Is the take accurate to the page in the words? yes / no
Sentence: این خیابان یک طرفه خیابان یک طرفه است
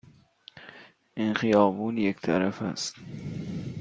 no